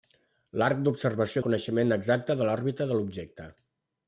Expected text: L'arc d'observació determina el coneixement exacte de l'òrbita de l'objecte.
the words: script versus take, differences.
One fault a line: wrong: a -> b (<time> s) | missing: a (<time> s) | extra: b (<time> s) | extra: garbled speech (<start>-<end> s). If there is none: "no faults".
missing: determina (1.4 s)